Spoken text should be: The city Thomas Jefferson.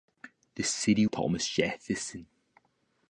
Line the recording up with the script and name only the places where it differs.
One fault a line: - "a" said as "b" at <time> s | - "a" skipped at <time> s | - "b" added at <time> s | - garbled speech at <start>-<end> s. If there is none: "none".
none